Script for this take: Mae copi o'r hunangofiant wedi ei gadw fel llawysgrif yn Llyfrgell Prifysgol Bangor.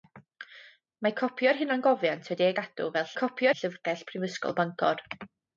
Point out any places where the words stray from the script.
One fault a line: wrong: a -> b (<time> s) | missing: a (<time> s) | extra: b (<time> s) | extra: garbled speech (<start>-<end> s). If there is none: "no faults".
wrong: llawysgrif -> copi (3.2 s)